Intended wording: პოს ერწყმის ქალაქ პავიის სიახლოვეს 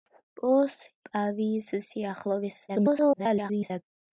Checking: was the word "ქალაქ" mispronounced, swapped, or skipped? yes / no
yes